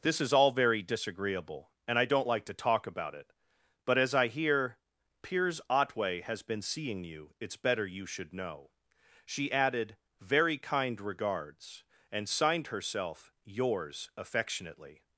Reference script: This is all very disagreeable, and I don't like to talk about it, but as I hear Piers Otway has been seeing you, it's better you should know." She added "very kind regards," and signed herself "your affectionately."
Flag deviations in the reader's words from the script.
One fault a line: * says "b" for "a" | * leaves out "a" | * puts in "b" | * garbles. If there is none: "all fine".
* says "yours" for "your"